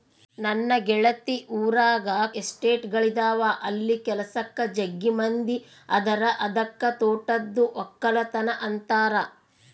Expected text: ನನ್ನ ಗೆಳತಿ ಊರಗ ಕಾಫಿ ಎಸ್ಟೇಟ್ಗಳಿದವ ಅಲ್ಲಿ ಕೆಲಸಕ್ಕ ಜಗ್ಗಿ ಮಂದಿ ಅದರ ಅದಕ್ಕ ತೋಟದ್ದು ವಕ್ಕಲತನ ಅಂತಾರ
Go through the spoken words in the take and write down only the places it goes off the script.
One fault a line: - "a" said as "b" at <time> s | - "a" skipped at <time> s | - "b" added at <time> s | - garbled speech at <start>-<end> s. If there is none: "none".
- "ಕಾಫಿ" skipped at 2.1 s